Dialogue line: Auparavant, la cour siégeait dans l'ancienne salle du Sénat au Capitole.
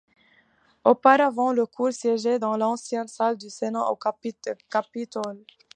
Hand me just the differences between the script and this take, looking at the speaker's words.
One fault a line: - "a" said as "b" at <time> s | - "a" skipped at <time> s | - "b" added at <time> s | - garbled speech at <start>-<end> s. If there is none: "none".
none